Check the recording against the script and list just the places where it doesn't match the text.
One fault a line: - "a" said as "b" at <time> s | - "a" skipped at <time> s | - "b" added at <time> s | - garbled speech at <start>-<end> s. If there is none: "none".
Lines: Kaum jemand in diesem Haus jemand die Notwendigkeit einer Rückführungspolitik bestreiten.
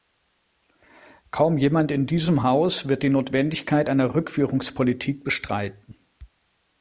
- "jemand" said as "wird" at 2.9 s